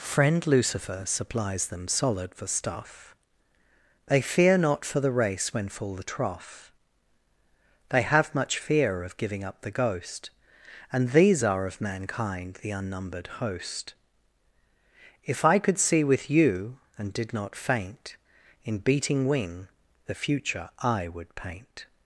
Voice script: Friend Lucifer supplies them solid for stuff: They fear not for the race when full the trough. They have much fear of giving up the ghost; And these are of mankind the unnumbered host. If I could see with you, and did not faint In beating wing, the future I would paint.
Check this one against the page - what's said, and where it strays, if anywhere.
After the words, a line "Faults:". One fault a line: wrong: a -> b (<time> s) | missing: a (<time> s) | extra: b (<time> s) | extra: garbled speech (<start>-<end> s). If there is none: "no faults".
Friend Lucifer supplies them solid for stuff: They fear not for the race when full the trough. They have much fear of giving up the ghost; And these are of mankind the unnumbered host. If I could see with you, and did not faint In beating wing, the future I would paint.
Faults:
no faults